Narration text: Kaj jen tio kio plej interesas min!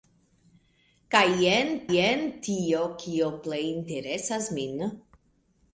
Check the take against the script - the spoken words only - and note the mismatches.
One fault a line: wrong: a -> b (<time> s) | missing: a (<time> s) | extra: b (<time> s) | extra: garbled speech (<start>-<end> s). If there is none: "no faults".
extra: jen (1.9 s)